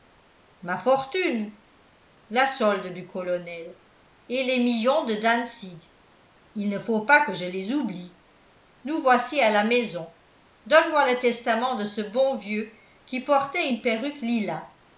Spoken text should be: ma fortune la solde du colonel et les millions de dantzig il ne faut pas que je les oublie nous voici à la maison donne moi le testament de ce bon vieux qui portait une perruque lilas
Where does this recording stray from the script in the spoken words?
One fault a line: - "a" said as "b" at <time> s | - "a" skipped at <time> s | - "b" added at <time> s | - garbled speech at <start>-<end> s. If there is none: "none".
none